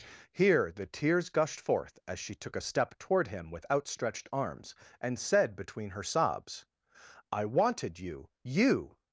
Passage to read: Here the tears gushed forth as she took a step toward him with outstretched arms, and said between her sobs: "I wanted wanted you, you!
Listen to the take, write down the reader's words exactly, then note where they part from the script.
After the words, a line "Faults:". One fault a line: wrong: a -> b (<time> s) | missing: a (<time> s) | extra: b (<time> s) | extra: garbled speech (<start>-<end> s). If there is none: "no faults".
Here the tears gushed forth as she took a step toward him with outstretched arms, and said between her sobs: "I wanted you, you!
Faults:
missing: wanted (8.0 s)